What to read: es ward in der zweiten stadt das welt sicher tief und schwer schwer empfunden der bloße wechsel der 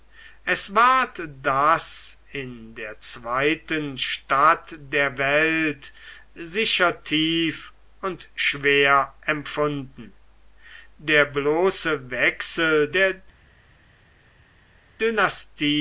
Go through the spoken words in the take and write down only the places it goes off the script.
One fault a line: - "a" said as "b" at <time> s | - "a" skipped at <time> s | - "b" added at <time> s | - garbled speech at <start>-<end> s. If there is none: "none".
- "das" added at 1.4 s
- "das" said as "der" at 4.8 s
- "schwer" skipped at 9.2 s